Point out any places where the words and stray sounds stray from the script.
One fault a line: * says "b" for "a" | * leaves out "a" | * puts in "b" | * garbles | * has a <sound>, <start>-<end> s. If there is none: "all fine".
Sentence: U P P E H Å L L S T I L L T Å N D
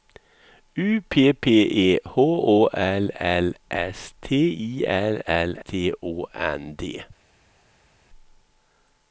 all fine